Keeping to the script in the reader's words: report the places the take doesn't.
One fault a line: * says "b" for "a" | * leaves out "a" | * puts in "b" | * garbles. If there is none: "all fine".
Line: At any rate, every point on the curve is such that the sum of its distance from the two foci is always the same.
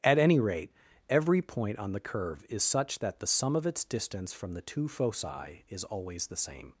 all fine